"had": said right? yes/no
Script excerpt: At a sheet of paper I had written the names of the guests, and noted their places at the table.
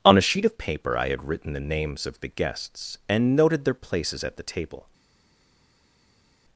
yes